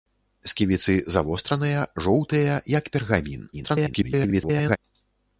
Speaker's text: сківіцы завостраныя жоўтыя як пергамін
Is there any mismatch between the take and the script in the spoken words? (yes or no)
yes